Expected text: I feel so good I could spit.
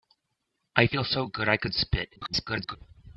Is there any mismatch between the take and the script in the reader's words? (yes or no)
yes